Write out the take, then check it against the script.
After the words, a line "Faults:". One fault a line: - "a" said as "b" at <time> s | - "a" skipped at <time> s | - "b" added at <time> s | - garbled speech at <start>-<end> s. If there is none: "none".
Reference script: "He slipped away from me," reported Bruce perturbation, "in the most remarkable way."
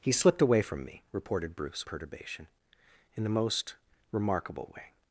"He slipped away from me," reported Bruce perturbation, "in the most remarkable way."
Faults:
none